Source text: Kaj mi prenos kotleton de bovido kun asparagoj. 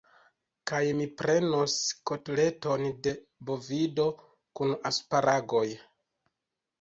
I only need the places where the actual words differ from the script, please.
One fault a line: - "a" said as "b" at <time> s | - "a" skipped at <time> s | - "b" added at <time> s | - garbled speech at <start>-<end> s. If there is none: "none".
none